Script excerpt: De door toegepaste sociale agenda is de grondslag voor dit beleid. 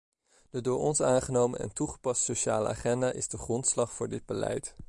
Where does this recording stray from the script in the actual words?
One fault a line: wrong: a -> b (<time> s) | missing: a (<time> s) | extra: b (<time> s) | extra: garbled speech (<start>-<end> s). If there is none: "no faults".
extra: ons aangenomen en (0.8 s)